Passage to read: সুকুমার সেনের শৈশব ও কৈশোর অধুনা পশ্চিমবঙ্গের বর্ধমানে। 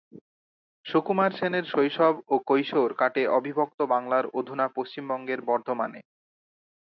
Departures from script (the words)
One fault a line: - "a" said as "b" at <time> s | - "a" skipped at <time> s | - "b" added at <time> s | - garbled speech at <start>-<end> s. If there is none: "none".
- "কাটে অবিভক্ত বাংলার" added at 2.9 s